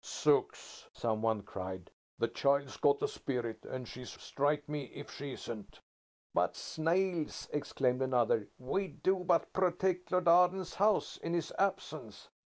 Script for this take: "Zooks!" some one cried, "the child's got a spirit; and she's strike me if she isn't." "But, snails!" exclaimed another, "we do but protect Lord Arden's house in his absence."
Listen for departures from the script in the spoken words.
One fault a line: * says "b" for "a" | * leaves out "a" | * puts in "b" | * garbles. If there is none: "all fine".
all fine